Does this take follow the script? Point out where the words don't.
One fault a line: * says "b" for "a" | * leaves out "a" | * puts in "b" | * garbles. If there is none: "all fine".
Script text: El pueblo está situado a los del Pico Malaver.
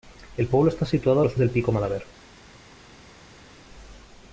all fine